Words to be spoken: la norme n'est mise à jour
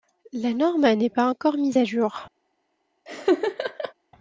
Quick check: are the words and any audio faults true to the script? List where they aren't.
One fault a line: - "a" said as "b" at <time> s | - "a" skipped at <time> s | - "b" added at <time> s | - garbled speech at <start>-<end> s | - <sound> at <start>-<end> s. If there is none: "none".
- "pas encore" added at 1.1 s
- laugh at 3.1-3.9 s